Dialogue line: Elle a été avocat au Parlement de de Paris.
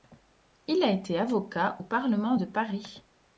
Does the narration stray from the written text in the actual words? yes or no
yes